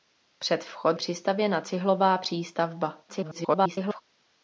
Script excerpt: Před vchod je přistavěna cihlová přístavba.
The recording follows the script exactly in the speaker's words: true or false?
false